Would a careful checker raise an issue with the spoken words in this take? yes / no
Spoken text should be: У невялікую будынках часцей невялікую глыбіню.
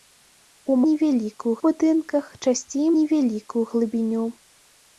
no